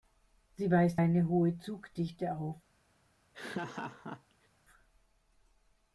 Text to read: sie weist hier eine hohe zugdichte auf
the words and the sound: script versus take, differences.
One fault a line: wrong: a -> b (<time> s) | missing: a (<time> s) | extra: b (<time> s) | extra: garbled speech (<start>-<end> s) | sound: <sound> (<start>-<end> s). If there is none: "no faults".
missing: hier (1.0 s)
sound: laugh (3.3-4.5 s)